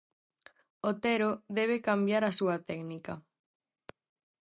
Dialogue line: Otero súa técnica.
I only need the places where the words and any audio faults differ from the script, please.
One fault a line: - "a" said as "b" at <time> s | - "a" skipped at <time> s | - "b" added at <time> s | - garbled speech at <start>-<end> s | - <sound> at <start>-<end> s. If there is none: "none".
- "debe cambiar a" added at 1.6 s